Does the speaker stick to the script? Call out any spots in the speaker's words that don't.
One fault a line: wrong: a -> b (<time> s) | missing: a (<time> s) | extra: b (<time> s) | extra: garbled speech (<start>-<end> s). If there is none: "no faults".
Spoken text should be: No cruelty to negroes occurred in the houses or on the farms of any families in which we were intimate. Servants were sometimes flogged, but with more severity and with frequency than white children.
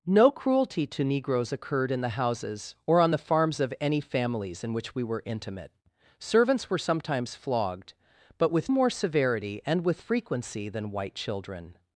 no faults